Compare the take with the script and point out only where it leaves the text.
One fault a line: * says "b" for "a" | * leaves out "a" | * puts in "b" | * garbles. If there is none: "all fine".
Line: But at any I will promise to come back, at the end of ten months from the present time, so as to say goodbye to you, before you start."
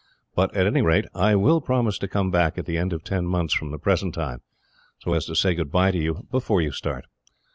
* puts in "rate"